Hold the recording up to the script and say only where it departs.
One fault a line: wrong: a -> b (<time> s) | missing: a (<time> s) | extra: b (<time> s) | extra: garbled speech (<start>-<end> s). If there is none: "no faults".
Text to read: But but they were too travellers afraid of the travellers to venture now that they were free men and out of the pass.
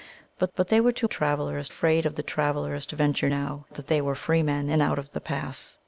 no faults